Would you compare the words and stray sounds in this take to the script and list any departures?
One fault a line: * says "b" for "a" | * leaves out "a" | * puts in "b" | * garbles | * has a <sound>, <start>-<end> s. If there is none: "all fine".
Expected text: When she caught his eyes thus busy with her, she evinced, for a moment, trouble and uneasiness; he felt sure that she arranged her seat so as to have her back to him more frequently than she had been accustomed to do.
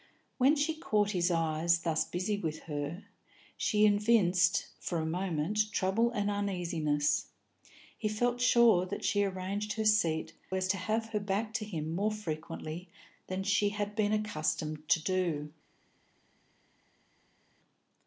* leaves out "so"